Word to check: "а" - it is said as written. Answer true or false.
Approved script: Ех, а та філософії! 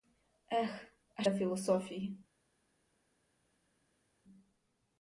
true